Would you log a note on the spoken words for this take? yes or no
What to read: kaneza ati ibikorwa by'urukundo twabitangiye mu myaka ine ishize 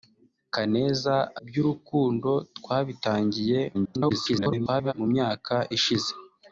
yes